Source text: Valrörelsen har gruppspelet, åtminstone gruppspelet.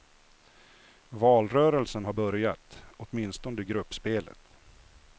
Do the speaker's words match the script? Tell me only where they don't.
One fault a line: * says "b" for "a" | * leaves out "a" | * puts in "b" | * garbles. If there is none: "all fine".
* says "börjat" for "gruppspelet"